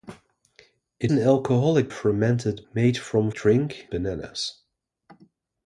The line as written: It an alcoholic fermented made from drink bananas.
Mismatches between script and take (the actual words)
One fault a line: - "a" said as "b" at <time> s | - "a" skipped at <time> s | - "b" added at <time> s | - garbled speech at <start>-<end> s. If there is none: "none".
none